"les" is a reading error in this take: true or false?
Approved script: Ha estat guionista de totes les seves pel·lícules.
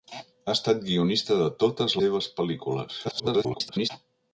true